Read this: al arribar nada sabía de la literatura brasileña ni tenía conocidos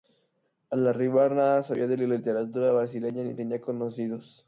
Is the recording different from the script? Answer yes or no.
no